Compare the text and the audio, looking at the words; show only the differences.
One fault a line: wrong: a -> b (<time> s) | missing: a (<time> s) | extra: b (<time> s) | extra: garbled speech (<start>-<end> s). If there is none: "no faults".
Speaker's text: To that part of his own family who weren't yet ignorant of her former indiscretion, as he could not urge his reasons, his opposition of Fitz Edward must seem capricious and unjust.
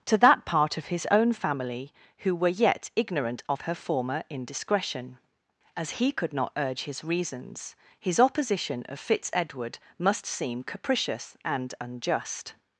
wrong: weren't -> were (2.4 s)